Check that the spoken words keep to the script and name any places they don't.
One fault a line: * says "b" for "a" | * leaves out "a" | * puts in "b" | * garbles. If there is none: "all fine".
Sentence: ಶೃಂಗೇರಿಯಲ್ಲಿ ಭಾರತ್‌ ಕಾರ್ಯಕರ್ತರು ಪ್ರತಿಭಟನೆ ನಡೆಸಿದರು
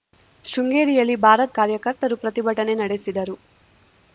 all fine